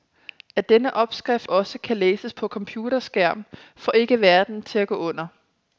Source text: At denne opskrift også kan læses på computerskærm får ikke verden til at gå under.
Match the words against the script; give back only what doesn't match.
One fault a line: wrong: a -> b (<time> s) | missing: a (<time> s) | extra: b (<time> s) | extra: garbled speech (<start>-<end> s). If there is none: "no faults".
no faults